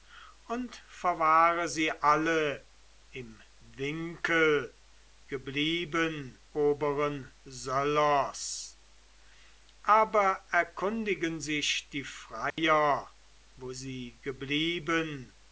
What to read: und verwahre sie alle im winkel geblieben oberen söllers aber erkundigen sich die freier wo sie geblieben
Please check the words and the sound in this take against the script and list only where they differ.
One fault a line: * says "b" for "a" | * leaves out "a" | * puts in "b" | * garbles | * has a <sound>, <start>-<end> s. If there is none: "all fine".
* has a dropout, 12.5-12.6 s